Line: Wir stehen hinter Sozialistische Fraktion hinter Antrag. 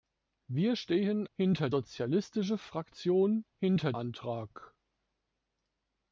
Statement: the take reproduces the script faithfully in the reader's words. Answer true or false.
true